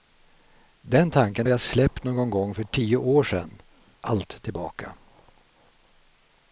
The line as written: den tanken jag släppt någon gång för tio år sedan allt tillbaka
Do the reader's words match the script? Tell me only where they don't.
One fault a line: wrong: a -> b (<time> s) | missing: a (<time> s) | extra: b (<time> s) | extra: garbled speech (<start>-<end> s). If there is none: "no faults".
no faults